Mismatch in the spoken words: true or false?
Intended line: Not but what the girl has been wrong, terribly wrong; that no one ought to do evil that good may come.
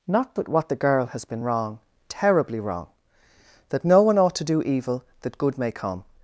false